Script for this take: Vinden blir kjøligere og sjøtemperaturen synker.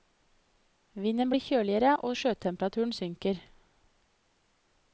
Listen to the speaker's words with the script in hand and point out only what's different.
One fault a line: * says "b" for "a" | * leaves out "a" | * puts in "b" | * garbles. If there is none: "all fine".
all fine